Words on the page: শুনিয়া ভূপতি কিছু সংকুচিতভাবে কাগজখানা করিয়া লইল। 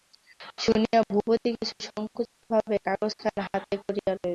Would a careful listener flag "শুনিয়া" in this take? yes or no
no